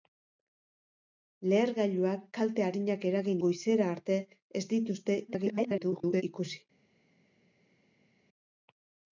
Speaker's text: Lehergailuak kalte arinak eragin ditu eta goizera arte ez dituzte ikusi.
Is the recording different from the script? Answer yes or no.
yes